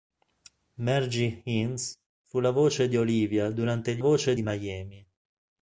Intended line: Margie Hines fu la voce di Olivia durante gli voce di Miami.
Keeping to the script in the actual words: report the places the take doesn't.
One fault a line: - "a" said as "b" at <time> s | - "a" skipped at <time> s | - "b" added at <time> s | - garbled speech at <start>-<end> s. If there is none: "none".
none